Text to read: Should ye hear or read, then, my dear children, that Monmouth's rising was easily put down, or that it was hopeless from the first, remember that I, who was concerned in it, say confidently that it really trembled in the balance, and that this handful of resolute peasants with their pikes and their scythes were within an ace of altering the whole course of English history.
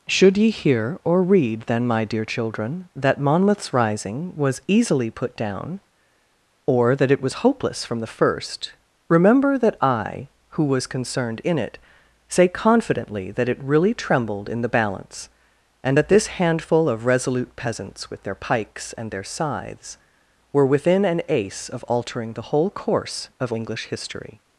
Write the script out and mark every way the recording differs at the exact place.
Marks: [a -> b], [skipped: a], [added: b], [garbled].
Should ye hear or read, then, my dear children, that Monmouth's rising was easily put down, or that it was hopeless from the first, remember that I, who was concerned in it, say confidently that it really trembled in the balance, and that this handful of resolute peasants with their pikes and their scythes were within an ace of altering the whole course of English history.